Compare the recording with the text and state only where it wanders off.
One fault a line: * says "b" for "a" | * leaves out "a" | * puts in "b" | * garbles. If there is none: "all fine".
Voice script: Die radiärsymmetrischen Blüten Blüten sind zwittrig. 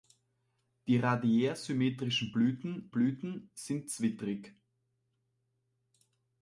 all fine